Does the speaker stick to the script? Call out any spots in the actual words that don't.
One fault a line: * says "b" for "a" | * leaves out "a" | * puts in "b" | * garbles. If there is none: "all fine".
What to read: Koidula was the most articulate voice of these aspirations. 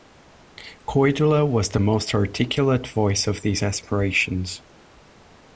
all fine